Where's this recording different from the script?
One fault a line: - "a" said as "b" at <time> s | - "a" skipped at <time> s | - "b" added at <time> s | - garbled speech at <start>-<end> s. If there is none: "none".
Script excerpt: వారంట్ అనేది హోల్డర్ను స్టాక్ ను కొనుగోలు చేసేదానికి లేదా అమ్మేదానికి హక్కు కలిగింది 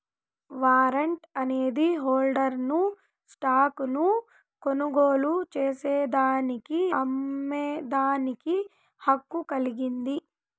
- "లేదా" skipped at 6.8 s